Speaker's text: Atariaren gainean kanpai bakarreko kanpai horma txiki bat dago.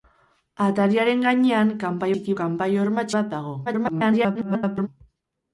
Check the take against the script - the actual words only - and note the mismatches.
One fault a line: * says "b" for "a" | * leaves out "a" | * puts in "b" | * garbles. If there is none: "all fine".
* says "txiki" for "bakarreko"
* leaves out "txiki"
* garbles